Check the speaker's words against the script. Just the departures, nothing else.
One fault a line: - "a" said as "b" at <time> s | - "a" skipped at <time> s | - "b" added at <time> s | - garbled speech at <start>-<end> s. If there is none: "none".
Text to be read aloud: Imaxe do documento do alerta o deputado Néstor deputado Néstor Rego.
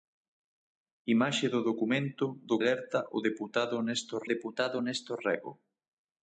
none